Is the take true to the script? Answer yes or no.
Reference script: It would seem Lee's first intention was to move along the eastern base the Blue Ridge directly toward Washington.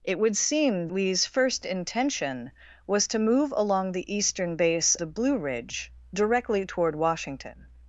yes